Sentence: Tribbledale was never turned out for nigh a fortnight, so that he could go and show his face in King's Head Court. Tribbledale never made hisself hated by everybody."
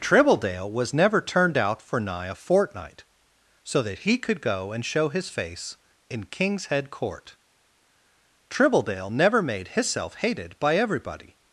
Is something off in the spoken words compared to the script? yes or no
no